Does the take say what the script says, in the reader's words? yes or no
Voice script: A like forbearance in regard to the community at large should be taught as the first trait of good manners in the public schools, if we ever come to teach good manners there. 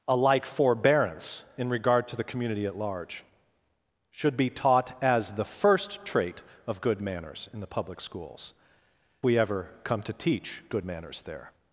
no